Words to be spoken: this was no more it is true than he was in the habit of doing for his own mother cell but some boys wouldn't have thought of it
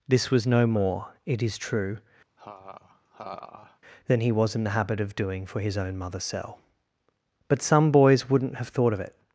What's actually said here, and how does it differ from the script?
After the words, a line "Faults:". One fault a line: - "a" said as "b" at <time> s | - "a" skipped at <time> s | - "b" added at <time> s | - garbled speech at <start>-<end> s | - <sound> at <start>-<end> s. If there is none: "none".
this was no more it is true than he was in the habit of doing for his own mother cell but some boys wouldn't have thought of it
Faults:
- laugh at 2.4-3.8 s